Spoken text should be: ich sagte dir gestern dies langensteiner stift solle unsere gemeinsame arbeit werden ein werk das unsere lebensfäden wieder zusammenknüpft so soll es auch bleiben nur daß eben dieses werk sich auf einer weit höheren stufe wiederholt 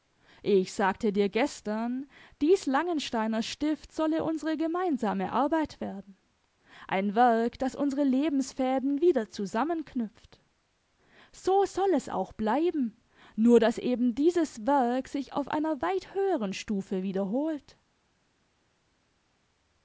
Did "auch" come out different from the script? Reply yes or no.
no